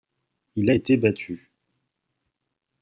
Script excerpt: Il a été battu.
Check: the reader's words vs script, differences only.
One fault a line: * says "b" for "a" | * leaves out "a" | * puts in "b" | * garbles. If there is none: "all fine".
all fine